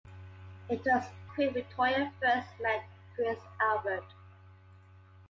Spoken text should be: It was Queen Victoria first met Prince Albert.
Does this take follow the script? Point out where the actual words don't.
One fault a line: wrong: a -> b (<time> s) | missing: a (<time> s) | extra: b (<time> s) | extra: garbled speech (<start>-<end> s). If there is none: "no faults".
no faults